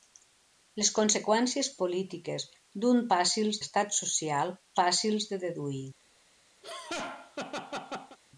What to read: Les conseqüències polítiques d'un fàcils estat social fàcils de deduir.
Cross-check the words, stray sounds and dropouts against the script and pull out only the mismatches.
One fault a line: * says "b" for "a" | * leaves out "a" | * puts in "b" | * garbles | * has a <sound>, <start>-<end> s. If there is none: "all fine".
* has a laugh, 6.6-8.2 s